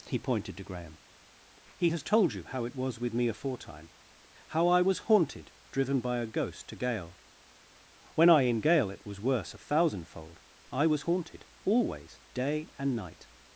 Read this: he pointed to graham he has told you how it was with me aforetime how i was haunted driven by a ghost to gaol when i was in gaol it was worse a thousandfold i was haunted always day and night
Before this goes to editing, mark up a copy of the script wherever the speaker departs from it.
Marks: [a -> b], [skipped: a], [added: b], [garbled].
he pointed to graham he has told you how it was with me aforetime how i was haunted driven by a ghost to gaol when i [skipped: was] in gaol it was worse a thousandfold i was haunted always day and night